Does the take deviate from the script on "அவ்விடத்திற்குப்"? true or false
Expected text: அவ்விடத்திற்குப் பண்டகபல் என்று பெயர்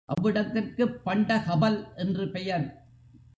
false